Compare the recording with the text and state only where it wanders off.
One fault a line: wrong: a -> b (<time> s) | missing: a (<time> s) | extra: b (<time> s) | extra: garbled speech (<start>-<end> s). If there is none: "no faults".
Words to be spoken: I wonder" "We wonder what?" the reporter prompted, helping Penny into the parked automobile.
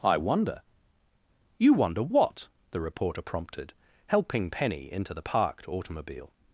wrong: We -> You (1.6 s)